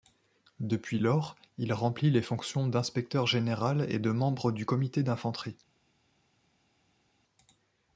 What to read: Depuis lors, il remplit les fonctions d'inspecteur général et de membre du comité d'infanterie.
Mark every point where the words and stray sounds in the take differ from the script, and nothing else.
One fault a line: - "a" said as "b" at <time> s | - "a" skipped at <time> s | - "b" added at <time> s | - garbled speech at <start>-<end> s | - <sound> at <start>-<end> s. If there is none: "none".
none